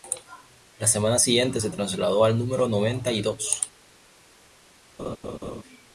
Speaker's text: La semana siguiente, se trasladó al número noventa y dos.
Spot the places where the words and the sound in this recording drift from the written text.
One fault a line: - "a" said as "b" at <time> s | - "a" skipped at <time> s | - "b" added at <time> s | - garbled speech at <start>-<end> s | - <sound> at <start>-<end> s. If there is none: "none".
- laugh at 5.0-5.6 s